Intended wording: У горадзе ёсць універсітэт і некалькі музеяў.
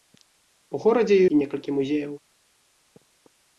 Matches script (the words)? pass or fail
fail